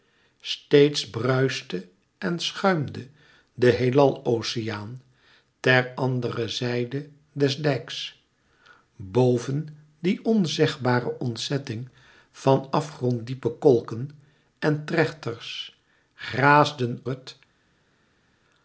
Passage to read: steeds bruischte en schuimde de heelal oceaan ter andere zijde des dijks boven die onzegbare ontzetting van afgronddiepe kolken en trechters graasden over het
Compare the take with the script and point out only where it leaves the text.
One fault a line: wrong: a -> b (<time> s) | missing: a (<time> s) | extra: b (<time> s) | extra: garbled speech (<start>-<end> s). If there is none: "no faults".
missing: over (17.0 s)